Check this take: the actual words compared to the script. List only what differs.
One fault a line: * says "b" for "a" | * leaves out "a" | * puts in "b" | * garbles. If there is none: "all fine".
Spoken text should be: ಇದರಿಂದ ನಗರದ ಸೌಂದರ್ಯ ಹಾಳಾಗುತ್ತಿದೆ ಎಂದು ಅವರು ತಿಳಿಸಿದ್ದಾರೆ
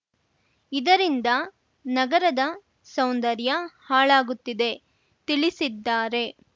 * leaves out "ಎಂದು ಅವರು"